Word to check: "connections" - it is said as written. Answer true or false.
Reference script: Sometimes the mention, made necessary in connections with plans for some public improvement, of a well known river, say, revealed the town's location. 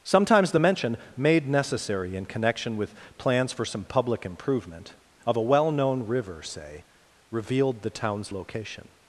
false